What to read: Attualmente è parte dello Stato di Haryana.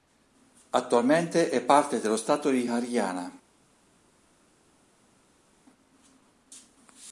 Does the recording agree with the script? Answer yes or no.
yes